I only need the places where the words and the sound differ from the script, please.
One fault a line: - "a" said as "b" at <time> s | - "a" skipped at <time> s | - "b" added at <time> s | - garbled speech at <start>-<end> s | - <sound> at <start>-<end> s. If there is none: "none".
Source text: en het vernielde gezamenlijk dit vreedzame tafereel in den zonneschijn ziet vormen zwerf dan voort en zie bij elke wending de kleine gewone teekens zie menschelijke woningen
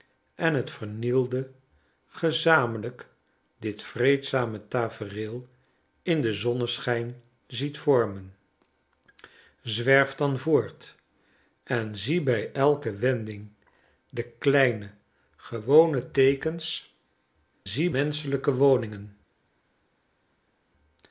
none